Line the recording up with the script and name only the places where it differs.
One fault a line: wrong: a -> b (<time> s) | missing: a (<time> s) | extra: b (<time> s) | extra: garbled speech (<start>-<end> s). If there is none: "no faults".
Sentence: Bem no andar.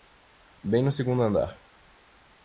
extra: segundo (0.9 s)